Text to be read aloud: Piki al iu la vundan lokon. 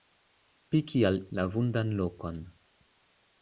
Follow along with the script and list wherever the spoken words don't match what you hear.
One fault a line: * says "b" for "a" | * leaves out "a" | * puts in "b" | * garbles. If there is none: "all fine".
* leaves out "iu"